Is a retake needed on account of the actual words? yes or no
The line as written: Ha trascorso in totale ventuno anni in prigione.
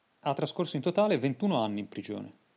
no